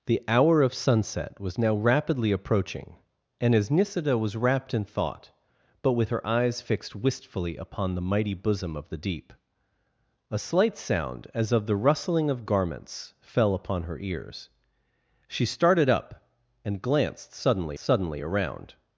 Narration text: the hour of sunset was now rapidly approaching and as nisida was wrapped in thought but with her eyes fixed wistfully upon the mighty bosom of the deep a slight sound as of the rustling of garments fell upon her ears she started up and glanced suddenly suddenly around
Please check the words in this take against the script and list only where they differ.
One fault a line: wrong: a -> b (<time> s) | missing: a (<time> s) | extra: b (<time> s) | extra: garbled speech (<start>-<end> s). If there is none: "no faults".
no faults